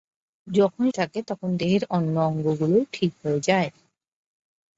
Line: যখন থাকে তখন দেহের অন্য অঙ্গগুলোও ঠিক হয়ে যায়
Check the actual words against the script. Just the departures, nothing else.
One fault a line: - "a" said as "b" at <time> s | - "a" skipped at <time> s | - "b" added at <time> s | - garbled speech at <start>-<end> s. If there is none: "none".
none